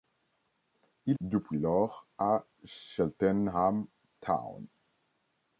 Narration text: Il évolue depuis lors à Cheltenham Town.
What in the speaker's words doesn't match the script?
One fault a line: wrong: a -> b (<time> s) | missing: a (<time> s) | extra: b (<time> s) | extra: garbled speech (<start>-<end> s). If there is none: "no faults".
missing: évolue (1.2 s)